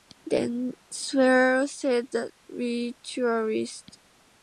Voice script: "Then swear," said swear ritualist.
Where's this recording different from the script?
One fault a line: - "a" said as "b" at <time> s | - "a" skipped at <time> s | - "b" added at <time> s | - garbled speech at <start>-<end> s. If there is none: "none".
- "swear" said as "the" at 2.1 s